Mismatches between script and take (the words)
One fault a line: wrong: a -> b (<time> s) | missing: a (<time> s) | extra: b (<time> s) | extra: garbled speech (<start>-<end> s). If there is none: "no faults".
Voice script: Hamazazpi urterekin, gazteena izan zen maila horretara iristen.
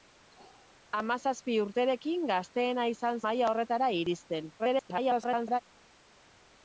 missing: zen (3.2 s)
extra: garbled speech (4.6-5.6 s)